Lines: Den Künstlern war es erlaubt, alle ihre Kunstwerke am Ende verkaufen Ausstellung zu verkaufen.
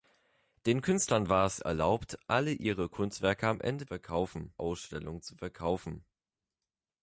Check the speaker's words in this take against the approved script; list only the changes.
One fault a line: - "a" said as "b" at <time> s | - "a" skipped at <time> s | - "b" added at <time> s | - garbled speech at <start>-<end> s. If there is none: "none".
none